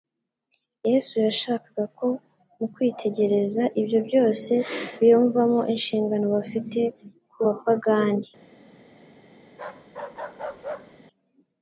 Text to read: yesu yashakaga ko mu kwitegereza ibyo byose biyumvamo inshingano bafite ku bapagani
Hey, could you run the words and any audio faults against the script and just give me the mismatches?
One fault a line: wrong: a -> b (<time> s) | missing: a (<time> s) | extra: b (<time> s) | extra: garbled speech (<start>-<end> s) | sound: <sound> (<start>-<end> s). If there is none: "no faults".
sound: bark (9.5-11.0 s)